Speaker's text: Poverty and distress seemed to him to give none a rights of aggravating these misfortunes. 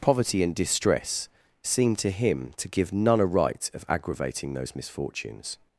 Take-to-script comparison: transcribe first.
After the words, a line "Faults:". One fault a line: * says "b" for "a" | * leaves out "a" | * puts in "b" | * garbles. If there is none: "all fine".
Poverty and distress seemed to him to give none a right of aggravating those misfortunes.
Faults:
* says "right" for "rights"
* says "those" for "these"